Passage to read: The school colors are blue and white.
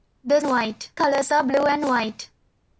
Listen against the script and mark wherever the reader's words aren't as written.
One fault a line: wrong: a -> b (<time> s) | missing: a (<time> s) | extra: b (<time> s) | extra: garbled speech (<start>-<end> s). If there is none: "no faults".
wrong: school -> white (0.4 s)